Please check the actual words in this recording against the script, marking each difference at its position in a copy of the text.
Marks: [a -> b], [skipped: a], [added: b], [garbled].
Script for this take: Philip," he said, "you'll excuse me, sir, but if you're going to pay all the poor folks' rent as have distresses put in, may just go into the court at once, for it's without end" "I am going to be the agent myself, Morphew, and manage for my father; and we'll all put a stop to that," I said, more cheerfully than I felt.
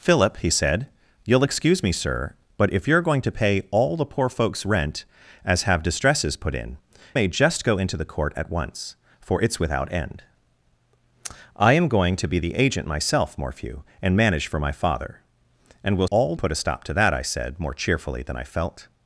Philip," he said, "you'll excuse me, sir, but if you're going to pay all the poor folks' rent as have distresses put in, may just go into the court at once, for it's without end" "I am going to be the agent myself, Morphew, and manage for my father; and we'll all put a stop to that," I said, more cheerfully than I felt.